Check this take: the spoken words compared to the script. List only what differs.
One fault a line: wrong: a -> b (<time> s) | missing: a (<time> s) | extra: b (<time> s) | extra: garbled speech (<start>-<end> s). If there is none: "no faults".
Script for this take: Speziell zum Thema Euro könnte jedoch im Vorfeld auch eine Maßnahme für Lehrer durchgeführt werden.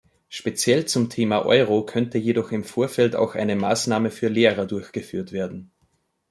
no faults